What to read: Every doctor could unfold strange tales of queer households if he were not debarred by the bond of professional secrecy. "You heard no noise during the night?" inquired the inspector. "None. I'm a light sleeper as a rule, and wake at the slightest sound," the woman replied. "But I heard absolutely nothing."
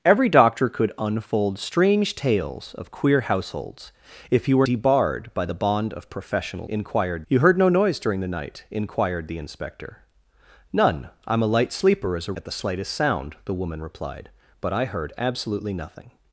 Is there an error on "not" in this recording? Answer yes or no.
yes